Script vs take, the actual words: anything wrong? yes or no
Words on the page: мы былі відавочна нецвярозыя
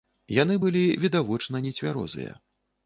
yes